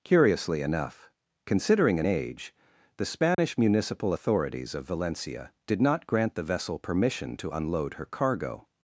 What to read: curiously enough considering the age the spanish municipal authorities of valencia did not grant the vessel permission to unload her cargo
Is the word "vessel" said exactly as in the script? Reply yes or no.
yes